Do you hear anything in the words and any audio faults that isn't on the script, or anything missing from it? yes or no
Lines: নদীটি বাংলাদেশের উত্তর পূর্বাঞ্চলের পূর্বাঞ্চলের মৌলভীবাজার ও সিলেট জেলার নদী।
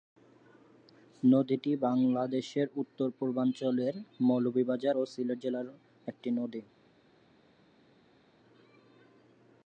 yes